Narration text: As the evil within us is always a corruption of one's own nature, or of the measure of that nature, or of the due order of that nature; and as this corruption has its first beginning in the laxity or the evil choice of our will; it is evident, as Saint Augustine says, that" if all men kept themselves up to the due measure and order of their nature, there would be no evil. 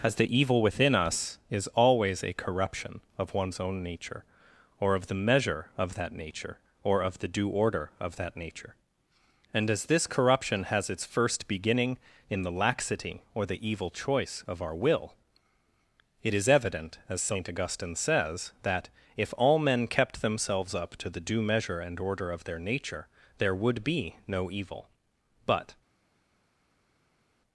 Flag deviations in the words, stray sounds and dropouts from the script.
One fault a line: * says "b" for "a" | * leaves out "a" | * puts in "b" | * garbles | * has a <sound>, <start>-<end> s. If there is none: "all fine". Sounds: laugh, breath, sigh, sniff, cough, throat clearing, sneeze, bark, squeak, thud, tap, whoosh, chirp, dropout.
* puts in "But"